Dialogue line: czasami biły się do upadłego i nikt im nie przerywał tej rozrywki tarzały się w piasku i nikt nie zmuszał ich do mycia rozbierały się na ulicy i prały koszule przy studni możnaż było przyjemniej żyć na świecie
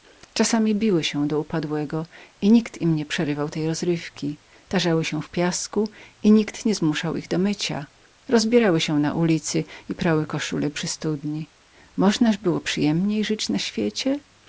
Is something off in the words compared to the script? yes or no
no